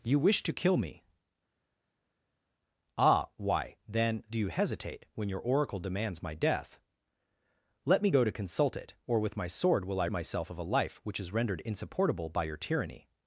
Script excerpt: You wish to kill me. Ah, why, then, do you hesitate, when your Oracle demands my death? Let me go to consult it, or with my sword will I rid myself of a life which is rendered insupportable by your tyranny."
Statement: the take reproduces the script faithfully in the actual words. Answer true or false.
false